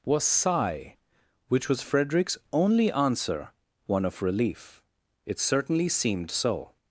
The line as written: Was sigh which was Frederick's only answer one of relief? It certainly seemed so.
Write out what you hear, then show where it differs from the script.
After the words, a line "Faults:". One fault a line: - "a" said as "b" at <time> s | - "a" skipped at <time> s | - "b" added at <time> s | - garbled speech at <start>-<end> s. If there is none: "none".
Was sigh which was Frederick's only answer one of relief? It certainly seemed so.
Faults:
none